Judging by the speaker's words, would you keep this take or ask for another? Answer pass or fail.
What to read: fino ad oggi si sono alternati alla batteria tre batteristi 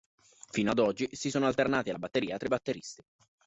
pass